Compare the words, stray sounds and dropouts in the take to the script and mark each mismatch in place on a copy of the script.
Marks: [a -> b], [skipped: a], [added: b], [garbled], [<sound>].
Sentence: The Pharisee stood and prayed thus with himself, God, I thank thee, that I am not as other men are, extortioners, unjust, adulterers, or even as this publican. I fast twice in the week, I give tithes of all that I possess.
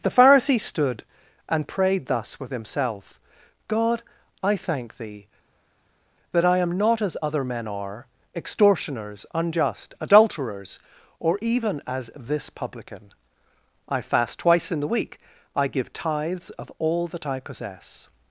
The Pharisee stood and prayed thus with himself, God, I thank thee, that I am not as other men are, extortioners, unjust, adulterers, or even as this publican. I fast twice in the week, I give tithes of all that I possess.